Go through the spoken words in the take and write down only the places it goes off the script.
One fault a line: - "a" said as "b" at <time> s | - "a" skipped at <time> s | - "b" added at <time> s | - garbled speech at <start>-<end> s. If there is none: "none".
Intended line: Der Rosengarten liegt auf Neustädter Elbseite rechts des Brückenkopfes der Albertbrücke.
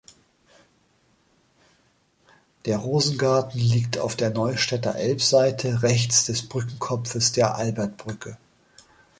- "der" added at 4.2 s